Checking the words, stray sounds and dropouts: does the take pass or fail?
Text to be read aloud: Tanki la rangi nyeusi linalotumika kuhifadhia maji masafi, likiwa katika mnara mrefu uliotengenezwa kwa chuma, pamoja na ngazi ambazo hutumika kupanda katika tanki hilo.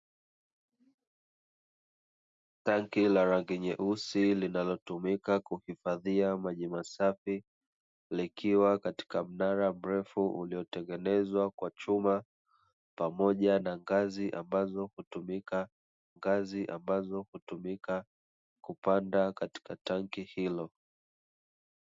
fail